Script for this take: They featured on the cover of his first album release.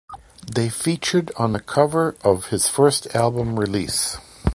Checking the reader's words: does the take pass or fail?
pass